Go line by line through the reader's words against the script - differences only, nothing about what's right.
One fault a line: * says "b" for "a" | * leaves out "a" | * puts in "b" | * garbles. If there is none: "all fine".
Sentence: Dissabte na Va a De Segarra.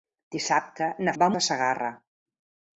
all fine